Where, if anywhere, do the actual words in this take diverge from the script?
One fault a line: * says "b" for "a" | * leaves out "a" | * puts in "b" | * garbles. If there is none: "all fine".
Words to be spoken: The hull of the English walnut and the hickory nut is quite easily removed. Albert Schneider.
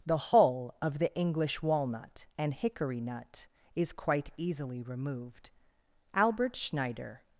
* leaves out "the"